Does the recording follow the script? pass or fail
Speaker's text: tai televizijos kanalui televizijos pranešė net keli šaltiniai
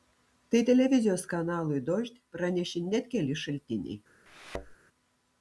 fail